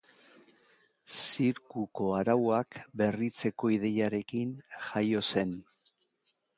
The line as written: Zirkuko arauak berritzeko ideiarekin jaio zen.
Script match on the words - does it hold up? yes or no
yes